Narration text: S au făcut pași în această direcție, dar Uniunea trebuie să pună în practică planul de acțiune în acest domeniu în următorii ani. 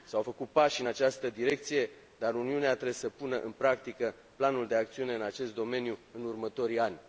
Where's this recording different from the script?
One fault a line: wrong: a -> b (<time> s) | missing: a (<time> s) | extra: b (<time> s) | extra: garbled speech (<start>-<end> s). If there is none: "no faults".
no faults